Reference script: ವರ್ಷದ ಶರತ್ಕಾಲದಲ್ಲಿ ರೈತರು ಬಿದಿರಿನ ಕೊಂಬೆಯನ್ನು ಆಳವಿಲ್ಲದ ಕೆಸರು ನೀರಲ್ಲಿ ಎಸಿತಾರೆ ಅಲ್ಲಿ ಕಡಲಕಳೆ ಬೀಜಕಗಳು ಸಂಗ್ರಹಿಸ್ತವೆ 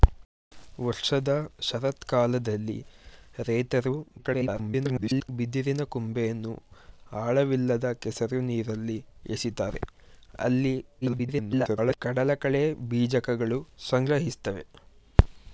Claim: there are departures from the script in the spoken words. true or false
true